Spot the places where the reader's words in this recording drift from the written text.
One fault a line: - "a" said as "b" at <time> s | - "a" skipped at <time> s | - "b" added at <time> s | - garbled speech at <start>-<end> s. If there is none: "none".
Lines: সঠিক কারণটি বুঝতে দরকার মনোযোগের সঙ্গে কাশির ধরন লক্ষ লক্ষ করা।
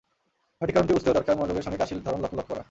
none